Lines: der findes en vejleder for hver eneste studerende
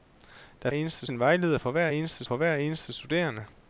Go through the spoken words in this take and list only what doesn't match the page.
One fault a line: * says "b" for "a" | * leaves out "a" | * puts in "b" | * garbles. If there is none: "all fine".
* says "eneste" for "findes"
* puts in "for hver eneste"